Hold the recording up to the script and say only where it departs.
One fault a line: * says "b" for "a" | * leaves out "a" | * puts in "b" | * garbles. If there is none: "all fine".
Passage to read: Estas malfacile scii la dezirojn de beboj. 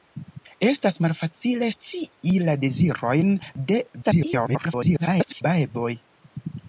* garbles